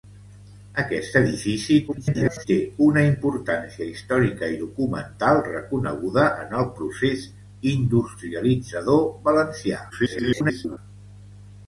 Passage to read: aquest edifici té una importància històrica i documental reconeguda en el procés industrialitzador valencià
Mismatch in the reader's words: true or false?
true